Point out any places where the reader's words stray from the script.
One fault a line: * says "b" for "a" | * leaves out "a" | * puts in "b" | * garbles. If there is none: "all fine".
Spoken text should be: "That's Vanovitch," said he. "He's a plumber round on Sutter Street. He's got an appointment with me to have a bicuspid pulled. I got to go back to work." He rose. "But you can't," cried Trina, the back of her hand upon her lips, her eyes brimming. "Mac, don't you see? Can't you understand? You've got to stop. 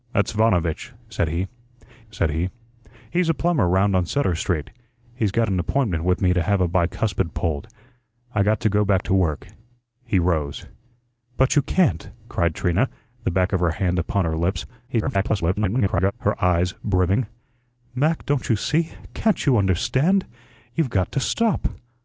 * puts in "said he"
* garbles